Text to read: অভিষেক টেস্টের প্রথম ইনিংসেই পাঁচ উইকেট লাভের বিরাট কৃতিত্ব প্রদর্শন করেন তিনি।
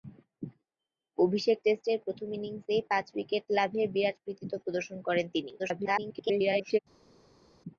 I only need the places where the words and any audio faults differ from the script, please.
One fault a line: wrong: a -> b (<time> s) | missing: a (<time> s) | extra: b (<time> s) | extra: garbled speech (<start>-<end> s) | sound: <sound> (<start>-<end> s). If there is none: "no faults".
extra: garbled speech (5.6-6.8 s)